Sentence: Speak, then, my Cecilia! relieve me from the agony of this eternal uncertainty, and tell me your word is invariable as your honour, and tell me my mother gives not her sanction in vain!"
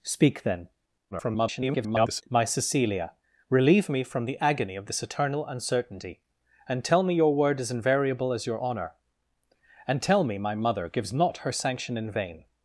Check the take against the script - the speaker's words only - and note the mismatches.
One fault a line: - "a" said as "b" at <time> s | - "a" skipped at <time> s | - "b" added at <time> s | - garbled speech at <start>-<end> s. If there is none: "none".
- garbled speech at 1.1-2.2 s